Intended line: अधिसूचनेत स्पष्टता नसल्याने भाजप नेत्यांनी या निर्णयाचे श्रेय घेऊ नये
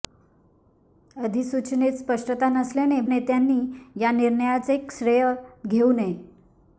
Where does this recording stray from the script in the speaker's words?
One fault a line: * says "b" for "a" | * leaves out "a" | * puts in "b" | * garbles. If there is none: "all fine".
* leaves out "भाजप"